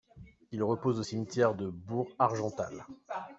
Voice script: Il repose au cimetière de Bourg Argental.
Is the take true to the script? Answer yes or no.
yes